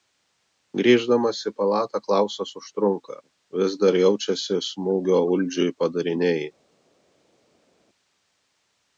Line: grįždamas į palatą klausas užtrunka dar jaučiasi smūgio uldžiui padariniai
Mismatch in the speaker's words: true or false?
true